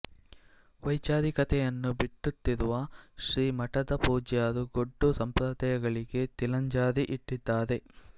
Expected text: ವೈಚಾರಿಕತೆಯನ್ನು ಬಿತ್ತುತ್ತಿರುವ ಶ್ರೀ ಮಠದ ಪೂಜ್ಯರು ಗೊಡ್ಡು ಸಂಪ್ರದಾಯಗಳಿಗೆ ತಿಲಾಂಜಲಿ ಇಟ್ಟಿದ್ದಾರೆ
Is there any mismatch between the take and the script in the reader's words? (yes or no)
no